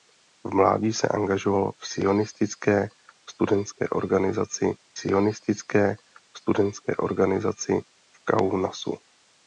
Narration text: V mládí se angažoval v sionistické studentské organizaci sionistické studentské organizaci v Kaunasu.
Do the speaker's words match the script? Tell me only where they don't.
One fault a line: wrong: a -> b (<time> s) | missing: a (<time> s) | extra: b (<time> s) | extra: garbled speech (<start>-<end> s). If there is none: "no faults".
no faults